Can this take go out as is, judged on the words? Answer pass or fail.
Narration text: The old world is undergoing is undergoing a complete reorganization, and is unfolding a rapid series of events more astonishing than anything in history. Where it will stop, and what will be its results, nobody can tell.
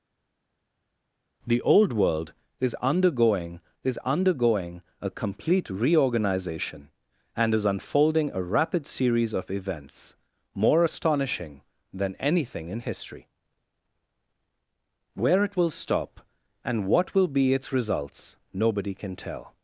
pass